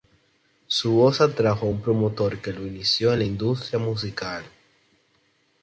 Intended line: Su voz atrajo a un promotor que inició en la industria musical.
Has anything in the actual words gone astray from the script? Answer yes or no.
yes